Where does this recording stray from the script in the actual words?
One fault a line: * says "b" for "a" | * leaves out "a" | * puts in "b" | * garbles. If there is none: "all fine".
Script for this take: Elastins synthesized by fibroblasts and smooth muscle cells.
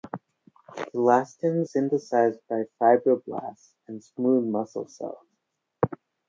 all fine